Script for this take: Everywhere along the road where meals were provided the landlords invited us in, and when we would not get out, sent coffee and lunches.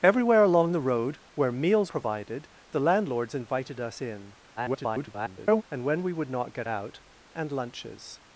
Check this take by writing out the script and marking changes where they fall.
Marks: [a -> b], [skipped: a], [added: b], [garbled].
Everywhere along the road where meals [skipped: were] provided the landlords invited us in, [garbled] and when we would not get out, [skipped: sent coffee] and lunches.